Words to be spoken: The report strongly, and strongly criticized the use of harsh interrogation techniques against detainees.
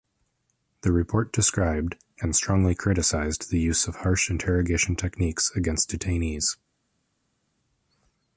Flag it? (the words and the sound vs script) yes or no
yes